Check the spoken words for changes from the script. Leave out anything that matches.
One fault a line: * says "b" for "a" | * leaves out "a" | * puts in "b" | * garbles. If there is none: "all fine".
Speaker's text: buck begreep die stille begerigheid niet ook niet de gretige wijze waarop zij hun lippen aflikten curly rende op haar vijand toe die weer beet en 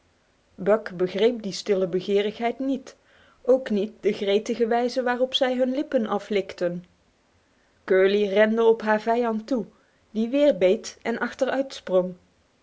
all fine